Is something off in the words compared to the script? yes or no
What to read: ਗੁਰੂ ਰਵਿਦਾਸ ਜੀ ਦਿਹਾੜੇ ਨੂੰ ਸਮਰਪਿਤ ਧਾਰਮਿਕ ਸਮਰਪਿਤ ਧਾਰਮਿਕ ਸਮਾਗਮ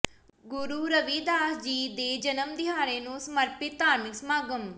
yes